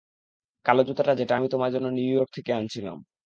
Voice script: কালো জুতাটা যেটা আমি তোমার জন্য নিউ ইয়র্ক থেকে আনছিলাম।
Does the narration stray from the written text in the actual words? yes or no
no